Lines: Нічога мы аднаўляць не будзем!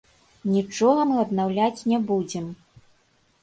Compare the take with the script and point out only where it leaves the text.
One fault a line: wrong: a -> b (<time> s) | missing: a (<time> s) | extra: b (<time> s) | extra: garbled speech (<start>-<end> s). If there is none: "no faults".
no faults